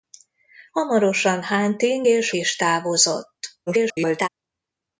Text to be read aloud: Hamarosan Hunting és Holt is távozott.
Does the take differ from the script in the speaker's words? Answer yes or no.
yes